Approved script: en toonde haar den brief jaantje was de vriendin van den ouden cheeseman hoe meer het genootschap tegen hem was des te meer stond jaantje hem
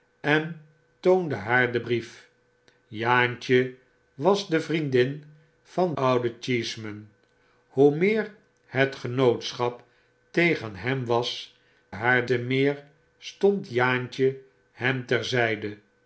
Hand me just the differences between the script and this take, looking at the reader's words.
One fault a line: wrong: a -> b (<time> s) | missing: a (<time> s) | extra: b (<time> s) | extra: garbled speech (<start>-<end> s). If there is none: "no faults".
missing: den (5.9 s)
wrong: des -> haar (11.9 s)